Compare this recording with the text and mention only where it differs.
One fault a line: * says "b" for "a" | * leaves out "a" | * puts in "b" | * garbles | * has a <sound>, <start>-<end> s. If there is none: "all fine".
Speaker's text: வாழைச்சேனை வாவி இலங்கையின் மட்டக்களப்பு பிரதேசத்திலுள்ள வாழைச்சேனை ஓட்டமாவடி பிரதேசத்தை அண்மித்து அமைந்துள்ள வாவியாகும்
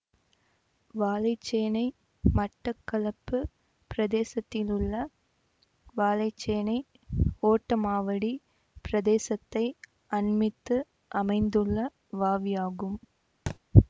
* leaves out "வாவி இலங்கையின்"
* has a thud, 13.5-13.6 s